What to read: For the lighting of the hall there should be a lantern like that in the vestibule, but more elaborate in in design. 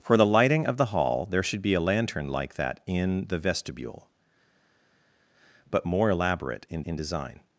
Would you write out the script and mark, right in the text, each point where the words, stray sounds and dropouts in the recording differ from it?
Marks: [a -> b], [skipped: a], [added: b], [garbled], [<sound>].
For the lighting of the hall there should be a lantern like that in the vestibule, but more elaborate in in design.